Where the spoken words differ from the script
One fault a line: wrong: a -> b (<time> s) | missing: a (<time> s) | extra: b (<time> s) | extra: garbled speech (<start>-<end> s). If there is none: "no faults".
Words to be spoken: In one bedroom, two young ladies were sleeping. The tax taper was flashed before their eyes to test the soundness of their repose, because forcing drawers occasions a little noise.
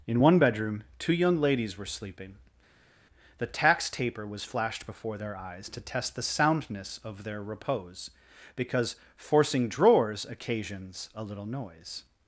no faults